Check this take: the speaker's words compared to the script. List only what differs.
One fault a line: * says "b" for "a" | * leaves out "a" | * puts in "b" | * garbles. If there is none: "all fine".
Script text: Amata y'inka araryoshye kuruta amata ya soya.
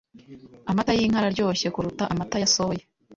all fine